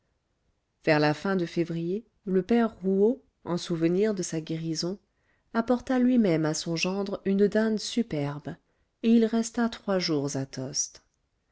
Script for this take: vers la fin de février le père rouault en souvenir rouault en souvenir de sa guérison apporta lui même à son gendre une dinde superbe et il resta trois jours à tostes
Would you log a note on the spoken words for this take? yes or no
yes